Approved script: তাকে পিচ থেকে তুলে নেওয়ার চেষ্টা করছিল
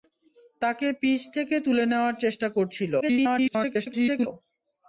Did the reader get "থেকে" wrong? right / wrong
right